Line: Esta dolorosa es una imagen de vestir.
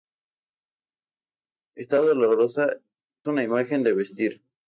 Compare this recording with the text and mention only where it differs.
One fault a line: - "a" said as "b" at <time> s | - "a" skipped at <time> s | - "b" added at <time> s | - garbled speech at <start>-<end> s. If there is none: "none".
- "es" skipped at 2.8 s